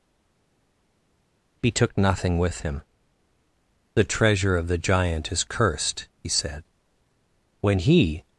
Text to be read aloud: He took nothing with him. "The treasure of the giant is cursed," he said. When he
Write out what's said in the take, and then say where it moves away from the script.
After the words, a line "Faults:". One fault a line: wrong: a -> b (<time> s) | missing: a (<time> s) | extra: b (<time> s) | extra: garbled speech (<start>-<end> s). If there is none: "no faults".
He took nothing with him. "The treasure of the giant is cursed," he said. When he
Faults:
no faults